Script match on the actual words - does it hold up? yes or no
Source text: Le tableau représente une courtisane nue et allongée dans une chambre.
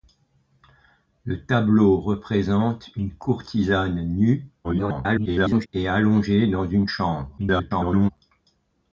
no